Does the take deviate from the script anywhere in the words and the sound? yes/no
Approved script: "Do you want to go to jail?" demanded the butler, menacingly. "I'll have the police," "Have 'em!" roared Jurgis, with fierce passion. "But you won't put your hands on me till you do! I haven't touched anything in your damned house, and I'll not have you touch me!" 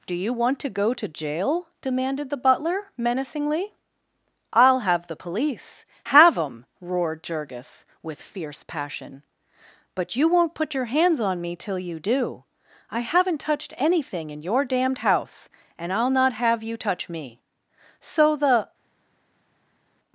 yes